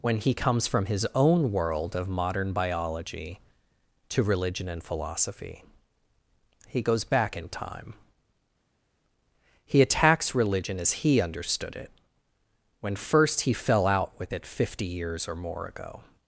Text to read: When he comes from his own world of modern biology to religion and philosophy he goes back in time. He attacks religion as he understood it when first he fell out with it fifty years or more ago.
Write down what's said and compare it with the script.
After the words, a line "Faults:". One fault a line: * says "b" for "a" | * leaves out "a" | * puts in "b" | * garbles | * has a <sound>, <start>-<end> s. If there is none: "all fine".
When he comes from his own world of modern biology to religion and philosophy he goes back in time. He attacks religion as he understood it when first he fell out with it fifty years or more ago.
Faults:
all fine